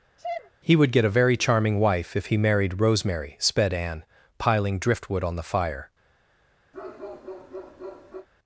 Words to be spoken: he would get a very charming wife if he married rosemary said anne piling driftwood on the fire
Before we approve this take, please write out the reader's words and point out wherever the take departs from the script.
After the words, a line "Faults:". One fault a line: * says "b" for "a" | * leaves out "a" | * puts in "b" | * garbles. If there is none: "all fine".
he would get a very charming wife if he married rosemary sped anne piling driftwood on the fire
Faults:
* says "sped" for "said"